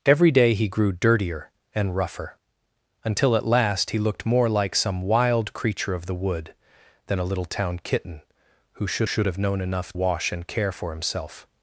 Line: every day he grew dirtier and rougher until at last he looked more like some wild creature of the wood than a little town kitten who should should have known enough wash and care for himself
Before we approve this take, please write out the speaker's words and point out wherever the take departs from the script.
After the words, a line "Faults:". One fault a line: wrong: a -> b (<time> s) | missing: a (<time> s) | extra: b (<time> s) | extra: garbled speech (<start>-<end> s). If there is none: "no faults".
every day he grew dirtier and rougher until at last he looked more like some wild creature of the wood than a little town kitten who should should have known enough wash and care for himself
Faults:
no faults